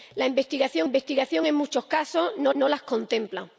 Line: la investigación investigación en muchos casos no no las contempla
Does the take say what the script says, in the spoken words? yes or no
yes